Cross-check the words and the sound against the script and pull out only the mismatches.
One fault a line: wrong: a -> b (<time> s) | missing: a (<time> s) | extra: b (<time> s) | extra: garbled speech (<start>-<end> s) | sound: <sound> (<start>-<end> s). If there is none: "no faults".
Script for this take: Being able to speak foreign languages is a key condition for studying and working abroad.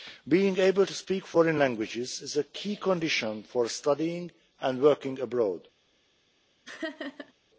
sound: laugh (6.6-7.3 s)